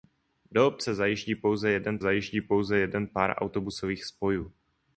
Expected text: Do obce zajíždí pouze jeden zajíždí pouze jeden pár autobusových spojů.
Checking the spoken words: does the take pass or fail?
pass